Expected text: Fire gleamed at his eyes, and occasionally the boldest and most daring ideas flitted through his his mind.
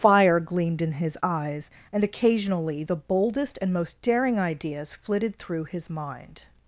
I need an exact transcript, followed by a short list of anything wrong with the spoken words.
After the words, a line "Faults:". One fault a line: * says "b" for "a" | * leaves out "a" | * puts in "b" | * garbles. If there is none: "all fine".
Fire gleamed in his eyes, and occasionally the boldest and most daring ideas flitted through his mind.
Faults:
* says "in" for "at"
* leaves out "his"